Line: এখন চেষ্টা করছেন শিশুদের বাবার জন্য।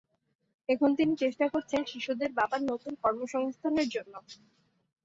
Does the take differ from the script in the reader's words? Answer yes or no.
yes